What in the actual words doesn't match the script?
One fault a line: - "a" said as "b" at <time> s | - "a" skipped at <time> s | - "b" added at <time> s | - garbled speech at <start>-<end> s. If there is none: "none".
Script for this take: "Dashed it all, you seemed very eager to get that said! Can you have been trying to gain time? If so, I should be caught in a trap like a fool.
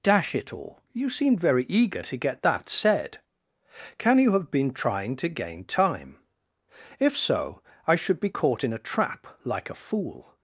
- "Dashed" said as "Dash" at 0.0 s